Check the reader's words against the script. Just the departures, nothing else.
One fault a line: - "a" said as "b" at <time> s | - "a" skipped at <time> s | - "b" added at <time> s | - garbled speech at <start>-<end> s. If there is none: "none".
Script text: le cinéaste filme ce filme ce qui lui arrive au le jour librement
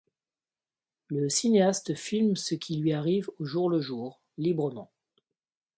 - "filme ce" skipped at 2.5 s
- "jour" added at 3.4 s